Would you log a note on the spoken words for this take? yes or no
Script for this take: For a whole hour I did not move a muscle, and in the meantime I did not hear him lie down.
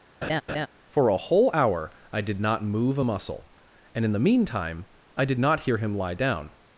no